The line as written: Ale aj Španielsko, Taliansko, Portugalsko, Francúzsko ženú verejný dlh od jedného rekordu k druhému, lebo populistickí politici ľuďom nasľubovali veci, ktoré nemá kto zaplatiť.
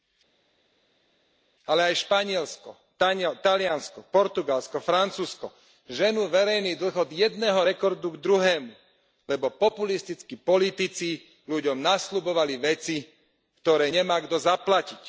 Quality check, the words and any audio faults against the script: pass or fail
pass